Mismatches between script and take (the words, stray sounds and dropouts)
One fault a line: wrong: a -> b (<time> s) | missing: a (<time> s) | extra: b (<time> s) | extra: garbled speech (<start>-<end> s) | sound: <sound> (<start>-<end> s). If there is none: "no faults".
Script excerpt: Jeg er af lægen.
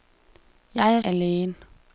no faults